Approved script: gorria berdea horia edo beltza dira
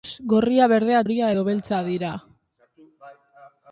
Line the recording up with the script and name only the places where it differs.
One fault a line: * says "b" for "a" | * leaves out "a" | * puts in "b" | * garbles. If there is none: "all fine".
all fine